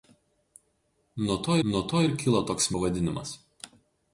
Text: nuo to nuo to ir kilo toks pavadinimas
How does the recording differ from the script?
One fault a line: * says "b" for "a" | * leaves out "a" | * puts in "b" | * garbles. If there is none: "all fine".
all fine